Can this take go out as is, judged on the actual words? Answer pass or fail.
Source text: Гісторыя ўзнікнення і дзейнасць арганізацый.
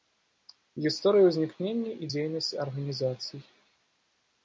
pass